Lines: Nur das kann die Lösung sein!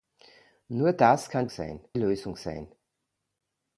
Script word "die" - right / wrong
wrong